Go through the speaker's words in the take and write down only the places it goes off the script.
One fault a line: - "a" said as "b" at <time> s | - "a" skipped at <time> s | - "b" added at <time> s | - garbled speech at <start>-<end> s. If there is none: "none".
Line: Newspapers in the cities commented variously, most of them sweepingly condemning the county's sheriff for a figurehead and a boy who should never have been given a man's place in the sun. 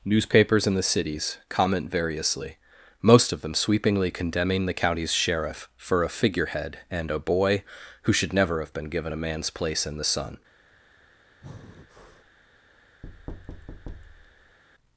- "commented" said as "comment" at 1.5 s